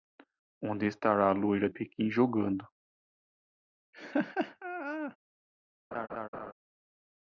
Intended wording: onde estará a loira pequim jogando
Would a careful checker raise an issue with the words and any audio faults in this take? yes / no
yes